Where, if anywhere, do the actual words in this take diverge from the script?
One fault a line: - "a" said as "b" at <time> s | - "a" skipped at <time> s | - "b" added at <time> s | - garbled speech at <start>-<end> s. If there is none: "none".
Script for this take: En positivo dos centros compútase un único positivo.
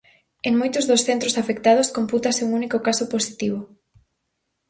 - "positivo" said as "moitos" at 0.6 s
- "afectados" added at 1.4 s
- "caso" added at 2.9 s